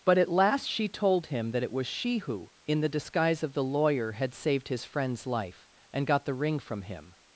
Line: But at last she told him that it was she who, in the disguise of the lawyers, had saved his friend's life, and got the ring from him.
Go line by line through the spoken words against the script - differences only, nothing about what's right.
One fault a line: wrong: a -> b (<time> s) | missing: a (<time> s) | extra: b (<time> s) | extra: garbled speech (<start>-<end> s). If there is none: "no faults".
wrong: lawyers -> lawyer (3.6 s)